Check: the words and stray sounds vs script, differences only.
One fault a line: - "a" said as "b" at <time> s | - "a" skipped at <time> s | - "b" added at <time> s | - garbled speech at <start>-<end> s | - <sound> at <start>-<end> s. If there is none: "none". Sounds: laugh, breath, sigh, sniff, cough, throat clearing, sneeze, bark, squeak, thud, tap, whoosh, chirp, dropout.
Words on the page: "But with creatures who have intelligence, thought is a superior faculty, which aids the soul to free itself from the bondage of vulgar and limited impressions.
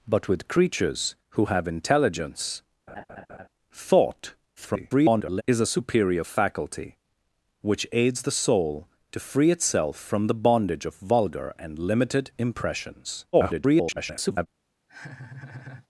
- laugh at 2.9-3.5 s
- garbled speech at 4.6-5.4 s
- garbled speech at 13.3-14.5 s
- laugh at 14.9-15.9 s